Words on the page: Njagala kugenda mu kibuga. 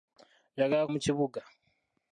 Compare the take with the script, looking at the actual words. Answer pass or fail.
fail